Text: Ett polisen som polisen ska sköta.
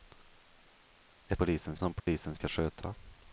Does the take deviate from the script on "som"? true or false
false